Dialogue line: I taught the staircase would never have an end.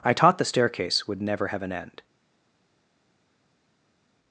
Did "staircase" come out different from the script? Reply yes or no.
no